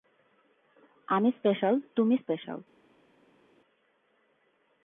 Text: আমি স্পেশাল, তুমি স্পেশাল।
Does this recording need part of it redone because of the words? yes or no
no